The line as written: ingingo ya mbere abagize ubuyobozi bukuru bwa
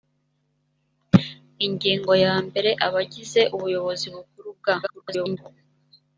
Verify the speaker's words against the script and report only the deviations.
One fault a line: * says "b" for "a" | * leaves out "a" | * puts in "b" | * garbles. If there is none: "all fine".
* garbles